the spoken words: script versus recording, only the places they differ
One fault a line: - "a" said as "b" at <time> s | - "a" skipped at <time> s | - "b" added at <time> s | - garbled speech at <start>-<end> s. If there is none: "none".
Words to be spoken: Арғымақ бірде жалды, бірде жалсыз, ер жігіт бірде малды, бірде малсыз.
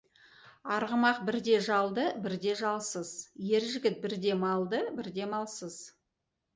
none